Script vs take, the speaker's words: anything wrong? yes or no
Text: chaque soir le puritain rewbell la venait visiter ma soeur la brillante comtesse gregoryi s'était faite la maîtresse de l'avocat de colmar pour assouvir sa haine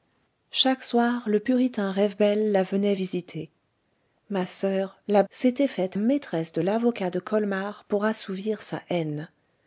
yes